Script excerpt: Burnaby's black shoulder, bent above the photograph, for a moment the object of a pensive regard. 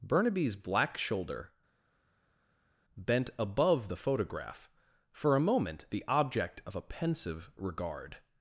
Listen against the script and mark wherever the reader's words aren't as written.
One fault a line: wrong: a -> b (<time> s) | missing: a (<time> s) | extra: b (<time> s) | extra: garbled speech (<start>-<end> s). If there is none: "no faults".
no faults